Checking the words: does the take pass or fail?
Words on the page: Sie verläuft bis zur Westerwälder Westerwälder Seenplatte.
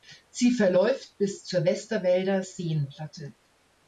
fail